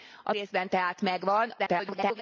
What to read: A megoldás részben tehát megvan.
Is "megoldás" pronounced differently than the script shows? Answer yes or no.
yes